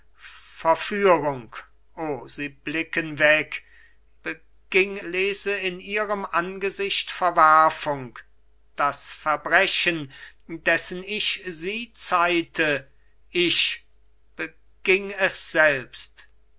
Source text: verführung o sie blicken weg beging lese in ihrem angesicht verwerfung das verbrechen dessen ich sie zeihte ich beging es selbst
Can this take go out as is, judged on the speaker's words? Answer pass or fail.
pass